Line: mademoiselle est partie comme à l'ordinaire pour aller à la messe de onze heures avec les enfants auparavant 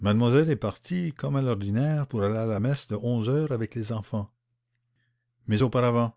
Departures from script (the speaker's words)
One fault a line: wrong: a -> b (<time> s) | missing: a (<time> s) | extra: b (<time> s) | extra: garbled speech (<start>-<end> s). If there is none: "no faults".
extra: mais (5.5 s)